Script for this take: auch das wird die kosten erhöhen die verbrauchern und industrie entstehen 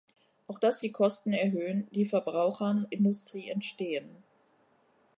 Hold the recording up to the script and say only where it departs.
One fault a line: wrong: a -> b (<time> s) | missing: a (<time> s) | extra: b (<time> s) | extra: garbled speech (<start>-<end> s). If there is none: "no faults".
missing: wird (0.8 s)
missing: und (2.9 s)